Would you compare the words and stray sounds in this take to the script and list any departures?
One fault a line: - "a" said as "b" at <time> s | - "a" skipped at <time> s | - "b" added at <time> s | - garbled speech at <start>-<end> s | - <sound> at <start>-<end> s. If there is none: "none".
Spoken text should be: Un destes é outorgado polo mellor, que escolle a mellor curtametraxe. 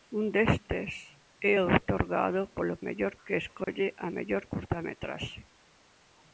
- dropout at 3.6-3.7 s